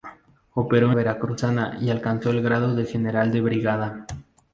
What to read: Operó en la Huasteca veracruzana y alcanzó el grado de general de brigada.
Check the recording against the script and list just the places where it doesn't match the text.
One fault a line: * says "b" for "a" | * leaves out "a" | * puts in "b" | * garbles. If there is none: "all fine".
* leaves out "en la Huasteca"